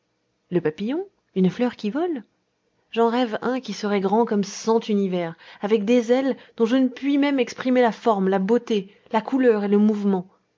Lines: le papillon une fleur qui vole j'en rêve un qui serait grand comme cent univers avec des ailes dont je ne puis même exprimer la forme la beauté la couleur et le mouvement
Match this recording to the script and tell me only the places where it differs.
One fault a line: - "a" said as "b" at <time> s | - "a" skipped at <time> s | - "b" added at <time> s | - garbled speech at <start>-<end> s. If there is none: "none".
none